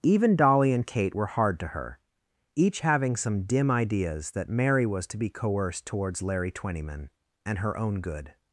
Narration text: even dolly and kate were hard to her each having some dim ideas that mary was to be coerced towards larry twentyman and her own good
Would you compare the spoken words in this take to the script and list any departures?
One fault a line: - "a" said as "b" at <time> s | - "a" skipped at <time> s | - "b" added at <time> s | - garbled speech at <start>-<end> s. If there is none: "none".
none